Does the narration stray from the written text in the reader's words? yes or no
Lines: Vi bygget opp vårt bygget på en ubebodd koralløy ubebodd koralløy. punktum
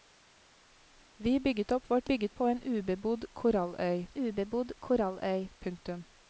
no